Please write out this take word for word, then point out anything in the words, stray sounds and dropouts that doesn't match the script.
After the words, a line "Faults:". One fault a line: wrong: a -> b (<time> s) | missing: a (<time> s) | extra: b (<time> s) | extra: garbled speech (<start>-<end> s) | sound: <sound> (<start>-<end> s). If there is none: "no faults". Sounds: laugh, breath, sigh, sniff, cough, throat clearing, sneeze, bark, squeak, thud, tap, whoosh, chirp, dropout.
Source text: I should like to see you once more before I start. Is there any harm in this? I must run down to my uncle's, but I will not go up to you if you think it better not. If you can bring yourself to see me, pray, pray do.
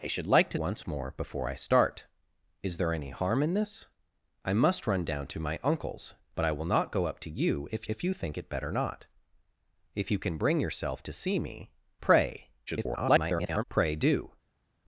I should like to once more before I start. Is there any harm in this? I must run down to my uncle's, but I will not go up to you if if you think it better not. If you can bring yourself to see me, pray, [garbled] pray do.
Faults:
missing: see you (0.6 s)
extra: if (7.9 s)
extra: garbled speech (12.7-13.6 s)